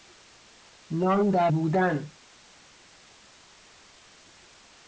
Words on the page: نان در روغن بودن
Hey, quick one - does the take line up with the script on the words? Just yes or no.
no